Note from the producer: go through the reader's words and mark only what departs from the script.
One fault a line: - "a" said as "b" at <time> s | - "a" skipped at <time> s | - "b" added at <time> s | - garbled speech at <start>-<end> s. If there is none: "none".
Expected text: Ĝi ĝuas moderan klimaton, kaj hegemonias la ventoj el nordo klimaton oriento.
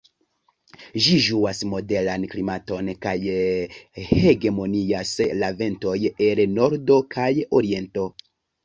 - "klimaton" said as "kaj" at 7.2 s